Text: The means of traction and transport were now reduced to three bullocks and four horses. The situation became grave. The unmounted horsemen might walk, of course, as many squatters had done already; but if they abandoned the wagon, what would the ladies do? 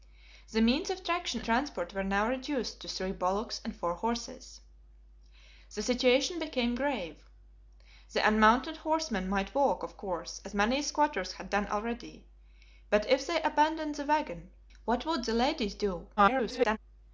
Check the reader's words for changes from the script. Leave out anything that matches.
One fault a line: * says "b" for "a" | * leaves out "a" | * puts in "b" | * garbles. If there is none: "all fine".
* leaves out "and"
* garbles